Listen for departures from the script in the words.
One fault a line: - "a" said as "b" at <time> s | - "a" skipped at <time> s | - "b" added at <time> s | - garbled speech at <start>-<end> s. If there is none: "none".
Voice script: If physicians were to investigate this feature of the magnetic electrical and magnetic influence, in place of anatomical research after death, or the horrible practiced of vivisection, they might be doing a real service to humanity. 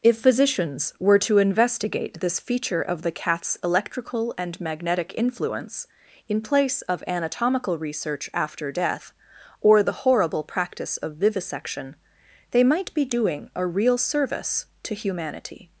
- "magnetic" said as "cat's" at 3.1 s
- "practiced" said as "practice" at 10.4 s